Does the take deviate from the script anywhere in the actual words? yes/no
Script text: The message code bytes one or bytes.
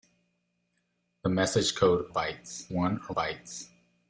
no